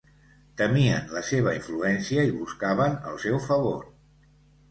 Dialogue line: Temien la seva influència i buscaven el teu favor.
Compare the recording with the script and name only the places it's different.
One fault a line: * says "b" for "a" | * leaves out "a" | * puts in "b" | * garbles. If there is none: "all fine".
* says "seu" for "teu"